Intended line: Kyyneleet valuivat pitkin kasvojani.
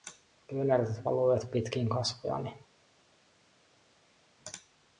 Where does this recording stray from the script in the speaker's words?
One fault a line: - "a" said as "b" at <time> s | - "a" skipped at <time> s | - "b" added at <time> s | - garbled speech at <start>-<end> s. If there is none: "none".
none